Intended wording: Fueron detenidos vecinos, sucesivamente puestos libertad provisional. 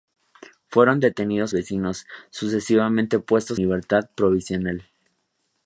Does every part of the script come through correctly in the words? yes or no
yes